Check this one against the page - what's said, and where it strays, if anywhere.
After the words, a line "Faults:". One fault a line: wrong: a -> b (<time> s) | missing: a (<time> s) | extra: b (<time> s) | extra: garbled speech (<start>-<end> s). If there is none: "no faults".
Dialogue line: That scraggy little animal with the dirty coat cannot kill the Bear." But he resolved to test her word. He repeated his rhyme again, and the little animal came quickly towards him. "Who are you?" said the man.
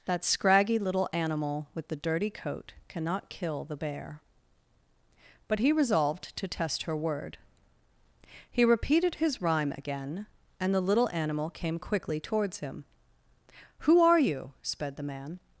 That scraggy little animal with the dirty coat cannot kill the Bear." But he resolved to test her word. He repeated his rhyme again, and the little animal came quickly towards him. "Who are you?" sped the man.
Faults:
wrong: said -> sped (14.6 s)